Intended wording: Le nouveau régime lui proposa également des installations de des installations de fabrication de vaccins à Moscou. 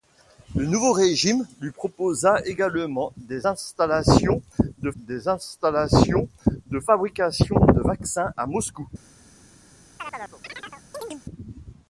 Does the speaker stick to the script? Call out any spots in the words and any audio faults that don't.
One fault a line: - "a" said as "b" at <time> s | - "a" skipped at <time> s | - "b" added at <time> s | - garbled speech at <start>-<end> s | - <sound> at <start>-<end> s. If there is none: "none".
- chirp at 10.0-11.2 s